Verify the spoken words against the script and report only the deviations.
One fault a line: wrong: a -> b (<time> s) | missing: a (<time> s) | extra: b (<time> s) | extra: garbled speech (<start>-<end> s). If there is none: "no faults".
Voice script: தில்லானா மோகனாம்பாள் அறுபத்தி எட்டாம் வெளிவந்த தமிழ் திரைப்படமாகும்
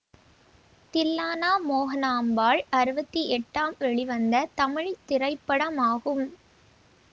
no faults